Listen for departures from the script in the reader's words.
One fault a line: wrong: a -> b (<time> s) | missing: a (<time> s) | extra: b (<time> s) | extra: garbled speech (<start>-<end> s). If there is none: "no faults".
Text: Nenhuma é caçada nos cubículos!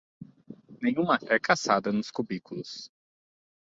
no faults